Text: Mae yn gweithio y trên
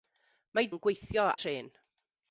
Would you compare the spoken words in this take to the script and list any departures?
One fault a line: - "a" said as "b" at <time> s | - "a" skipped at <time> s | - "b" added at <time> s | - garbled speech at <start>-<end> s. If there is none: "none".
none